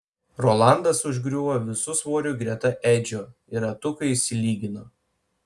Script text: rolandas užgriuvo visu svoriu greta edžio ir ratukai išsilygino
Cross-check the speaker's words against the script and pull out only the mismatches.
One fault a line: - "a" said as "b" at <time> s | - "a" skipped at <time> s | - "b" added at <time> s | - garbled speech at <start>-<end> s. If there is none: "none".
none